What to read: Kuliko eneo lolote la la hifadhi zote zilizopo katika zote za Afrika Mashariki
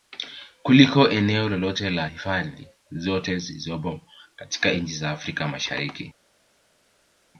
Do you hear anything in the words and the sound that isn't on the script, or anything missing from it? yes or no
yes